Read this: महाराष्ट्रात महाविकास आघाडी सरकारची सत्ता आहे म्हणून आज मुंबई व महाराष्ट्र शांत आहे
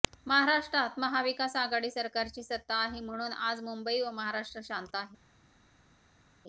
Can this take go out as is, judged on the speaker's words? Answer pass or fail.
pass